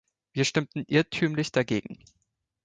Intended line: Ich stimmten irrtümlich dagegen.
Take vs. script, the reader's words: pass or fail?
fail